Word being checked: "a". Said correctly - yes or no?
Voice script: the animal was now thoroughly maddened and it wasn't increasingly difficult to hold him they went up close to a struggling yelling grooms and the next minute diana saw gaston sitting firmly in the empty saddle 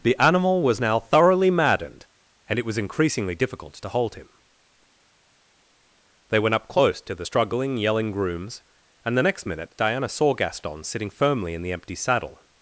no